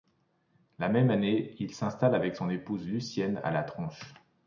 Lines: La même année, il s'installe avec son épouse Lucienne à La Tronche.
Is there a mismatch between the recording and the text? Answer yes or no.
no